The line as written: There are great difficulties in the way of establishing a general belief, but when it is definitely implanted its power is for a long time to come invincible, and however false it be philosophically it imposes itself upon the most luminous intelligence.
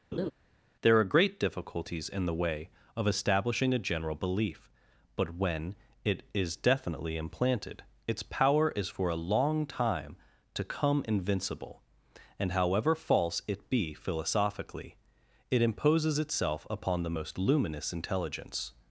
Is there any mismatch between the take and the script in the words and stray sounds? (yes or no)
yes